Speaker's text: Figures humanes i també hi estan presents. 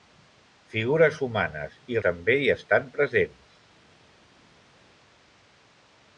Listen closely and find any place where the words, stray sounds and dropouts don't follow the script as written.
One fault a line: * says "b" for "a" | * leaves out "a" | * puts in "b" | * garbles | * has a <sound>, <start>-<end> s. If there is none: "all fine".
all fine